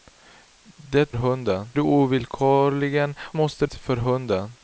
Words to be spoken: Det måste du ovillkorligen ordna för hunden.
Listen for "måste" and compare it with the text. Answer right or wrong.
wrong